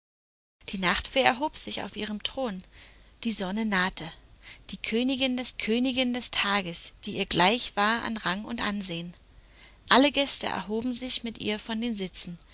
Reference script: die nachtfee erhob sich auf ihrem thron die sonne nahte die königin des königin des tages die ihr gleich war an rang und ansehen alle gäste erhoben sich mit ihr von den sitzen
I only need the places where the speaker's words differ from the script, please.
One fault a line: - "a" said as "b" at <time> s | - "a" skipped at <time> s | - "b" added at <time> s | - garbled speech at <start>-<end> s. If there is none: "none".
none